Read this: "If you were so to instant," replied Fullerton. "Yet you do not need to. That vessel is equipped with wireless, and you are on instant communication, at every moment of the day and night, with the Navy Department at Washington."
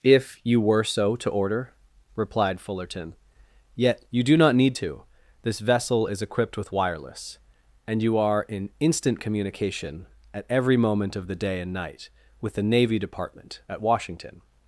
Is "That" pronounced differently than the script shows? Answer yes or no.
yes